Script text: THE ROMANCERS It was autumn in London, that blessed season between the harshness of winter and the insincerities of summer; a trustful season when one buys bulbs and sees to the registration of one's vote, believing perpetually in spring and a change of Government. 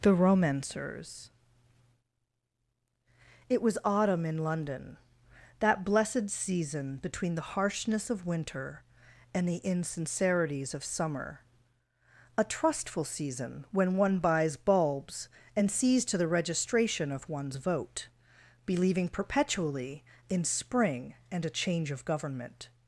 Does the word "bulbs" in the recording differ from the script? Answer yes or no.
no